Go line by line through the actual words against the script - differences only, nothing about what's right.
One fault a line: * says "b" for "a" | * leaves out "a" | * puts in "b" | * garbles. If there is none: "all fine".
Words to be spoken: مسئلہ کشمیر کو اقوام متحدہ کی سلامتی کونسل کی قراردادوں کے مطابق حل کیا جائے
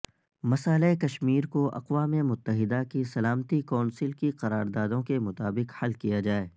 all fine